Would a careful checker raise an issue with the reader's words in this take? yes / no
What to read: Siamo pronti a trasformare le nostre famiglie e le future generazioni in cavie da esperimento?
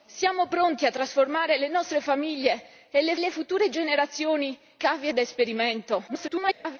yes